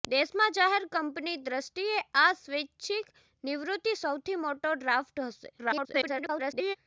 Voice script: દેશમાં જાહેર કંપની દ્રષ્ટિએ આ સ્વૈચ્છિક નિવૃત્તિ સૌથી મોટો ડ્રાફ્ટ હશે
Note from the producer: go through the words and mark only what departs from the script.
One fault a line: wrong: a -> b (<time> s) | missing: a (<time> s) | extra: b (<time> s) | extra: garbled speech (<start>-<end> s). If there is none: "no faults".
extra: garbled speech (5.6-6.8 s)